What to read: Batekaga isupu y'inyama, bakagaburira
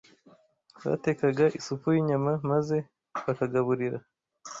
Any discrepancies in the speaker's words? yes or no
yes